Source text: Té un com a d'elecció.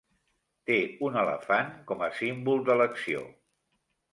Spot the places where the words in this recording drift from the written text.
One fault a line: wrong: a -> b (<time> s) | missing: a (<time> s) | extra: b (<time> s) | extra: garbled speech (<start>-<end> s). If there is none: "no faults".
extra: elefant (1.2 s)
extra: símbol (2.2 s)